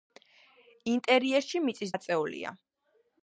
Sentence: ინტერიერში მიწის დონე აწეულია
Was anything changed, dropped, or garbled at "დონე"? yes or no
yes